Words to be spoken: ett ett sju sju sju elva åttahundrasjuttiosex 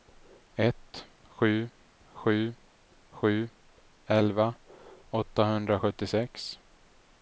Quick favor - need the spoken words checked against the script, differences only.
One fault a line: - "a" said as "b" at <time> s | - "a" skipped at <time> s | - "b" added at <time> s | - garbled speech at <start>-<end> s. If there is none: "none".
- "ett" skipped at 1.1 s